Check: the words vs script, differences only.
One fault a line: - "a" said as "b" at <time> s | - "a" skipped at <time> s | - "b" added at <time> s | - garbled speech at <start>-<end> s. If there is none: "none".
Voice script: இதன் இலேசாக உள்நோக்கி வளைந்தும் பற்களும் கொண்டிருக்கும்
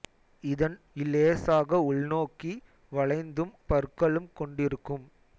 none